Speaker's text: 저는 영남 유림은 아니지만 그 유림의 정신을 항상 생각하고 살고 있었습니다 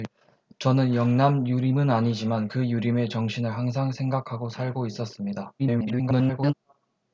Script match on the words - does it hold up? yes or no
no